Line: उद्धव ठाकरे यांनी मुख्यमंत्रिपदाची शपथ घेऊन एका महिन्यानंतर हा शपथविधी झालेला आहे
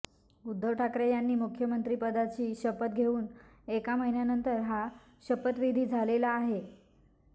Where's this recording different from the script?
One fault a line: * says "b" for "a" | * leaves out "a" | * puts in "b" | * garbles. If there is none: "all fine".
all fine